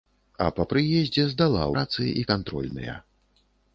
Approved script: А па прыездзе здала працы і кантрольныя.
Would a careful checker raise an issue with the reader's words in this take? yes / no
no